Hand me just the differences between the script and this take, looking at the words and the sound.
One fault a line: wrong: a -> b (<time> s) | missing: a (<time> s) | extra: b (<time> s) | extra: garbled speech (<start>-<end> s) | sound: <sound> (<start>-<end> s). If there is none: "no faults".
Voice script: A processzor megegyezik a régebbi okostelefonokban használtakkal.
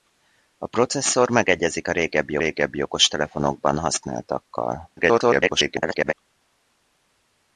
extra: régebbi (2.3 s)
extra: garbled speech (5.0-6.1 s)